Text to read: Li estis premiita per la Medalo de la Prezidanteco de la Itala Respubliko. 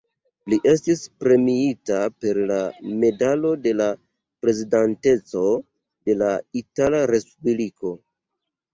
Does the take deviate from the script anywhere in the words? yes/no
no